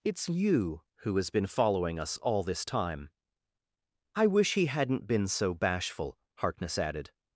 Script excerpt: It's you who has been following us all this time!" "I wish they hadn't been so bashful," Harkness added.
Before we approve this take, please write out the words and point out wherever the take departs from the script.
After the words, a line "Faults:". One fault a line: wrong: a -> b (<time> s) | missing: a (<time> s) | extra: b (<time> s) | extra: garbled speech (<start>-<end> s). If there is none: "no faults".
It's you who has been following us all this time!" "I wish he hadn't been so bashful," Harkness added.
Faults:
wrong: they -> he (4.5 s)